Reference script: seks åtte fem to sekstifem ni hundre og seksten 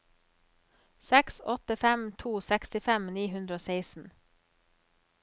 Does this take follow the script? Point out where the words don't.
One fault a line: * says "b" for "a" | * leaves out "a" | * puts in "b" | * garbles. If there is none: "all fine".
all fine